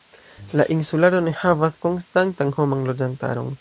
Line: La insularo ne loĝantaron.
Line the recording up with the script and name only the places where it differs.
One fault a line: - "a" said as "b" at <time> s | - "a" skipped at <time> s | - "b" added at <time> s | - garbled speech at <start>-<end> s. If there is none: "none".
- "havas konstantan homan" added at 1.4 s